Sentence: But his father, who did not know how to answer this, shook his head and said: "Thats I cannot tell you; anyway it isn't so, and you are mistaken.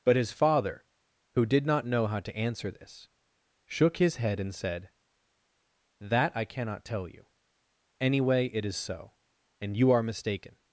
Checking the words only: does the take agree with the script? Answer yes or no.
no